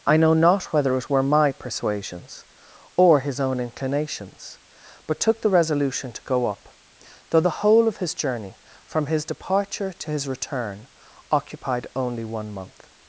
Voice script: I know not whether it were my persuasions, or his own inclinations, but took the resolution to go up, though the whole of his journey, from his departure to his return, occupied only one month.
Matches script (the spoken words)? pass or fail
pass